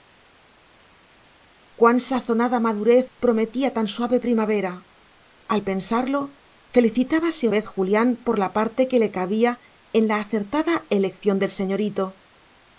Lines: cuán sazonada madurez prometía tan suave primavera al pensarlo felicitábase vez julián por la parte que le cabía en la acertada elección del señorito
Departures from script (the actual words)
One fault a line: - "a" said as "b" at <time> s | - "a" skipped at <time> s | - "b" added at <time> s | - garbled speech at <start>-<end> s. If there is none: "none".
none